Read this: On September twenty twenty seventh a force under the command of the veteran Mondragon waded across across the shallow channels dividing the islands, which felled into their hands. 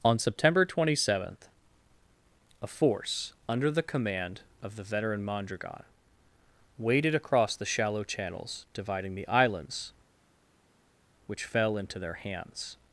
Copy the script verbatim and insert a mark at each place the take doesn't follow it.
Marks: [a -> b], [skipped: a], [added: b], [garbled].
On September twenty [skipped: twenty] seventh a force under the command of the veteran Mondragon waded across [skipped: across] the shallow channels dividing the islands, which [felled -> fell] into their hands.